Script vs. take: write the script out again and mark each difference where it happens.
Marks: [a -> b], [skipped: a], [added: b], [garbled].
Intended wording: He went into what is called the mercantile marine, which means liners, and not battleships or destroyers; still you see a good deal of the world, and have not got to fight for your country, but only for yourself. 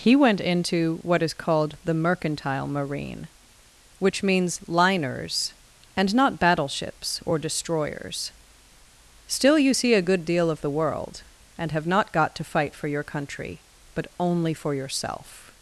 He went into what is called the mercantile marine, which means liners, and not battleships or destroyers; still you see a good deal of the world, and have not got to fight for your country, but only for yourself.